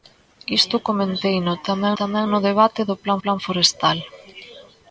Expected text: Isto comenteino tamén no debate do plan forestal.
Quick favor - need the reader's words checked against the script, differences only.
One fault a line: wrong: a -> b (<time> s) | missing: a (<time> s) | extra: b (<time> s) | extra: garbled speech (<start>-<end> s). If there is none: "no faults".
extra: tamén (2.0 s)
extra: plan (3.2 s)